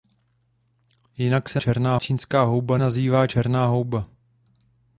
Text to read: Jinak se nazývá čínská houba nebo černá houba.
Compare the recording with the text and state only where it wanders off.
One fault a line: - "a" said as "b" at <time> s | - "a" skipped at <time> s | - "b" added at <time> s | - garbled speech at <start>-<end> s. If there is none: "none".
- "nazývá" said as "černá" at 1.6 s
- "nebo" said as "nazývá" at 2.8 s